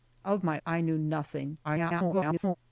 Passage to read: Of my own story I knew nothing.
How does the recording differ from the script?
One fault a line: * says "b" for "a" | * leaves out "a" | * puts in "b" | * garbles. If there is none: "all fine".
* leaves out "own story"
* garbles